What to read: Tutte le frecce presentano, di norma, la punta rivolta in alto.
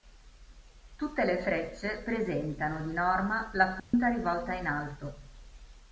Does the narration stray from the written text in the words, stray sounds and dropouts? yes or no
yes